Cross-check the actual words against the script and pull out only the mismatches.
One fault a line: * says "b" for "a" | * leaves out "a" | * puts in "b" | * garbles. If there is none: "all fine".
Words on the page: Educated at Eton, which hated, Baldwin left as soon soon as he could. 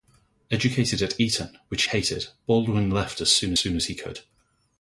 all fine